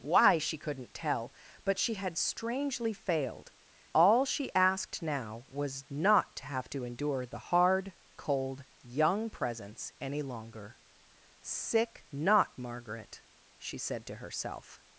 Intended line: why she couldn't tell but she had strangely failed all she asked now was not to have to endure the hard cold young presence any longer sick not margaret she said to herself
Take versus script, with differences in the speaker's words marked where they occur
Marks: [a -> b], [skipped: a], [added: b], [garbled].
why she couldn't tell but she had strangely failed all she asked now was not to have to endure the hard cold young presence any longer sick not margaret she said to herself